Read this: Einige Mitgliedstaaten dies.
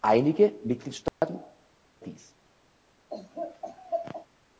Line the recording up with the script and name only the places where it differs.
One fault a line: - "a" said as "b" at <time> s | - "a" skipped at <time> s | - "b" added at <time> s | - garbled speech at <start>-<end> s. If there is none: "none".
none